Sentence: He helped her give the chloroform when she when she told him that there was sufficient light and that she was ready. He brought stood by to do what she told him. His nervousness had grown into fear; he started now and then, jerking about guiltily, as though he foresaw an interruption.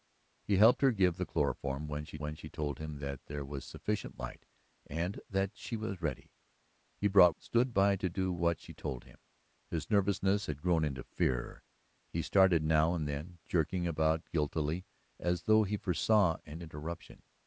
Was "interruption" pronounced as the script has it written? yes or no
yes